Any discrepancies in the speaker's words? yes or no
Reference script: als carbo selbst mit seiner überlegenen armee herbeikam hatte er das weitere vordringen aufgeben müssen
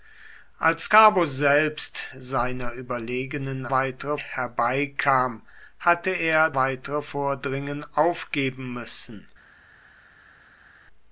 yes